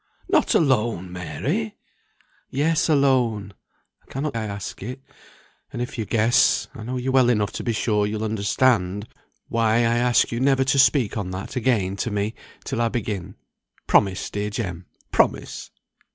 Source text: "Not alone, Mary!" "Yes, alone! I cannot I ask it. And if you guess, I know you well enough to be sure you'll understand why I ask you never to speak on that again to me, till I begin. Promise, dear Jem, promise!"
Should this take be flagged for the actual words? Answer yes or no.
no